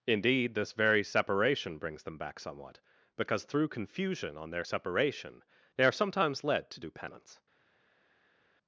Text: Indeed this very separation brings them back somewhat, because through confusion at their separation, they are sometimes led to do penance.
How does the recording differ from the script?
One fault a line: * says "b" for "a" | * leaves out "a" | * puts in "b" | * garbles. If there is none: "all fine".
* says "on" for "at"